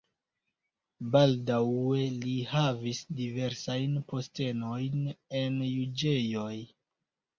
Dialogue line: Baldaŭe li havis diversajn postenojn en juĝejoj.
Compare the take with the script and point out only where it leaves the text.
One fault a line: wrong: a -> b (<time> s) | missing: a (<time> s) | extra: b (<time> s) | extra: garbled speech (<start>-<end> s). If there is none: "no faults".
no faults